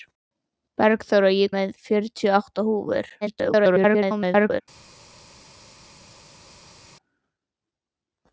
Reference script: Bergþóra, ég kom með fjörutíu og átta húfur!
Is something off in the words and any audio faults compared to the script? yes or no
yes